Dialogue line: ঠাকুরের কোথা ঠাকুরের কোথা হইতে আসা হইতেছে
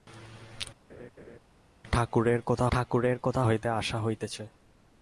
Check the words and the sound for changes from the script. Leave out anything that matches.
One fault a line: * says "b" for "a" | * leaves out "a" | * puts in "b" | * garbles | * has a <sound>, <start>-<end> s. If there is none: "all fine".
* has a laugh, 0.9-1.4 s